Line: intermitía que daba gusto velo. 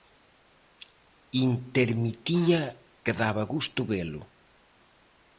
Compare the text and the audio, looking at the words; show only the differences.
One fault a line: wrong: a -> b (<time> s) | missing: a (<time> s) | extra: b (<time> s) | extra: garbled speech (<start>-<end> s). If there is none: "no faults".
no faults